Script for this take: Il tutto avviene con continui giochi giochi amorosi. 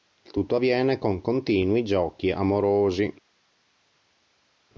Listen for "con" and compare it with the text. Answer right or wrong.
right